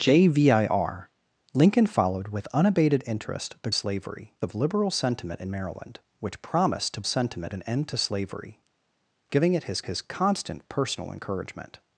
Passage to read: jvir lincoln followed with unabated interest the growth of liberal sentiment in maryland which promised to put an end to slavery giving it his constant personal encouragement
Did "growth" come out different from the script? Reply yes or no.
yes